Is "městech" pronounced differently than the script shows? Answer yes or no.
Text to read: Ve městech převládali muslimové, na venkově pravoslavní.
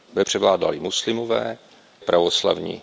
yes